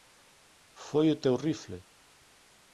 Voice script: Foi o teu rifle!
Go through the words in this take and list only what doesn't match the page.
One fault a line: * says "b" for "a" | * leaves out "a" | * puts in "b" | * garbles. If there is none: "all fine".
all fine